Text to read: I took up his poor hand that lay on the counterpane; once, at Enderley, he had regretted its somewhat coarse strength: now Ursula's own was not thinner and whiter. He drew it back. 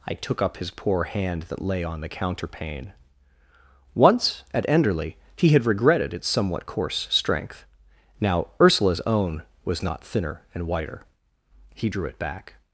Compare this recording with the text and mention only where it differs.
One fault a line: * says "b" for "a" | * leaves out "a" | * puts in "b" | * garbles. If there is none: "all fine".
all fine